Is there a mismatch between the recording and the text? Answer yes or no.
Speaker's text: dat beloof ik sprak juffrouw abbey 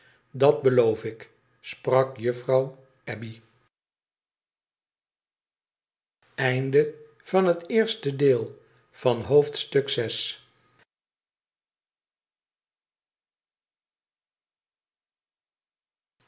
no